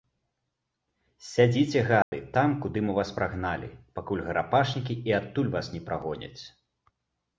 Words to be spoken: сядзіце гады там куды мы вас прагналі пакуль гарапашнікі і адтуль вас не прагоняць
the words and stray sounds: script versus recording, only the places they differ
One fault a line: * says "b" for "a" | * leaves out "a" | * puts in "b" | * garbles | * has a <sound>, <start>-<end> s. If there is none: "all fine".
* has a dropout, 2.0-2.1 s